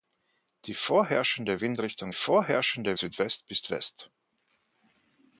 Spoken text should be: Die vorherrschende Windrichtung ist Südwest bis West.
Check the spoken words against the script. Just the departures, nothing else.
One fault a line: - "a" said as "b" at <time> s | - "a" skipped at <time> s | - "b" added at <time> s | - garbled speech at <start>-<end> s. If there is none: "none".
- "ist" said as "vorherrschende" at 2.1 s